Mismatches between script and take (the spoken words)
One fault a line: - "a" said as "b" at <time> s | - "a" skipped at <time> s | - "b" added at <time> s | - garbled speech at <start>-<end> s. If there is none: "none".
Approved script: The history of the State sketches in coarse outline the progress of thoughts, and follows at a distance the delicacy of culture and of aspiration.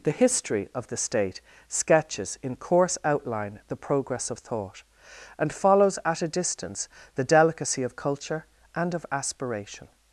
- "thoughts" said as "thought" at 4.4 s